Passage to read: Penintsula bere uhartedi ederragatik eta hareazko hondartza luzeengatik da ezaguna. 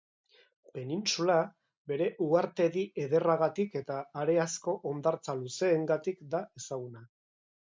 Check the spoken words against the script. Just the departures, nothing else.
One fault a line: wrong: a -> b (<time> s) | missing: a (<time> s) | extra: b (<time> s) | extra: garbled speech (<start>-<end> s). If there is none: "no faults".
no faults